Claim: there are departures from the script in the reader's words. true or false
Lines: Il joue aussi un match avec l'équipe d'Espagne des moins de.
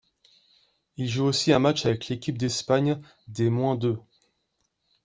false